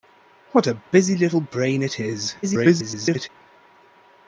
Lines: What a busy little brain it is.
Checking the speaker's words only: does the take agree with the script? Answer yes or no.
no